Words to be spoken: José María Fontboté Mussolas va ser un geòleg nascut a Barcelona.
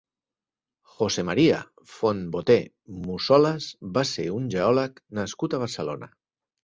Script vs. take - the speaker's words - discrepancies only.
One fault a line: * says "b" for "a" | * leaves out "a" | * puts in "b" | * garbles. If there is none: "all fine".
all fine